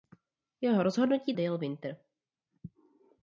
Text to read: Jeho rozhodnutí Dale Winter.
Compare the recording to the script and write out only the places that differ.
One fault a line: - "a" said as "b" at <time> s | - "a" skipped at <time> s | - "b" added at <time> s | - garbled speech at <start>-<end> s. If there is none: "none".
none